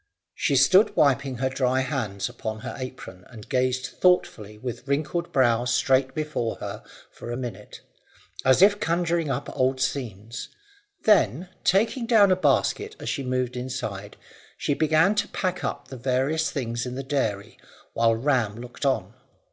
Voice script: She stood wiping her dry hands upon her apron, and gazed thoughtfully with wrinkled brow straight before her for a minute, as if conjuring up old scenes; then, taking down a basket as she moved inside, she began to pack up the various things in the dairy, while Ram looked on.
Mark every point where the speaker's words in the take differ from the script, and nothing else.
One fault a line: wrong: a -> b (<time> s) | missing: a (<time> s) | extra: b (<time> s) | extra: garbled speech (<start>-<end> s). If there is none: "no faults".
no faults